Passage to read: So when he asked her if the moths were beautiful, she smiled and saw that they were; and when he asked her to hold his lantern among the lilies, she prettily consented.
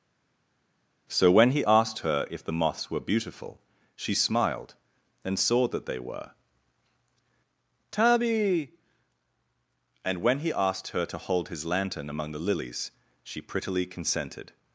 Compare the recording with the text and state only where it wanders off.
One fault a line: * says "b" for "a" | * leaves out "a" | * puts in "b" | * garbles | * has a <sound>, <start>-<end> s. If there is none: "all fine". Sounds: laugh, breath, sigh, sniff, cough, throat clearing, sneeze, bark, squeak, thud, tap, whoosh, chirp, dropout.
* puts in "tabby"